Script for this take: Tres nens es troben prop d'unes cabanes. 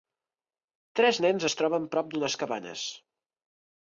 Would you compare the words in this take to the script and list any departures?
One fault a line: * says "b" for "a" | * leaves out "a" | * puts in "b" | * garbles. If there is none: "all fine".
all fine